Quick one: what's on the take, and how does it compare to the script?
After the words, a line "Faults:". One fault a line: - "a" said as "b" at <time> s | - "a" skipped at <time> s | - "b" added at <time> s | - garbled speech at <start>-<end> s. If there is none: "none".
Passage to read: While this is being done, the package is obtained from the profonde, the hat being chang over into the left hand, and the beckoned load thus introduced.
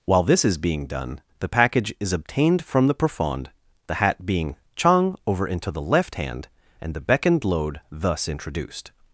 While this is being done, the package is obtained from the profonde, the hat being chang over into the left hand, and the beckoned load thus introduced.
Faults:
none